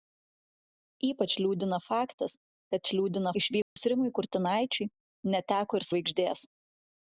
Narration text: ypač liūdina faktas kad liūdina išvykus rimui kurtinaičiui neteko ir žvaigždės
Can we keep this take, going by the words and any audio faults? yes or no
no